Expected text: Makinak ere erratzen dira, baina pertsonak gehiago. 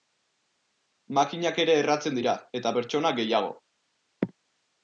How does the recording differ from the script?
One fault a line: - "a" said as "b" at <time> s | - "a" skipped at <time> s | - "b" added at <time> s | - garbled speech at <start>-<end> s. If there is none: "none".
- "baina" said as "eta" at 2.6 s